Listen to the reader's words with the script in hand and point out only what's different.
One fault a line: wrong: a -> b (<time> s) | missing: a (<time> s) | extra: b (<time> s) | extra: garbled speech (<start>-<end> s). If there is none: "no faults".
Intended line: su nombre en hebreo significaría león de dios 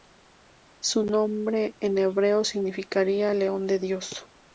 no faults